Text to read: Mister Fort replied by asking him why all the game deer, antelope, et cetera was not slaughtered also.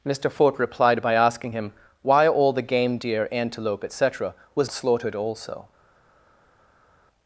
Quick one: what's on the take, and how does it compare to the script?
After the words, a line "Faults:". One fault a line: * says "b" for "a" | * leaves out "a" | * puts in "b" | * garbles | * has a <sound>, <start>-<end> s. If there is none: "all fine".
Mister Fort replied by asking him why all the game deer, antelope, et cetera was slaughtered also.
Faults:
* leaves out "not"